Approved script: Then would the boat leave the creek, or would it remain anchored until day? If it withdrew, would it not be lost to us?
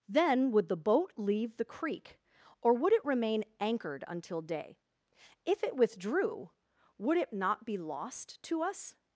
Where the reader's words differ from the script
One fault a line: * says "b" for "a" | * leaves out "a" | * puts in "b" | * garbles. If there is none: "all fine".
all fine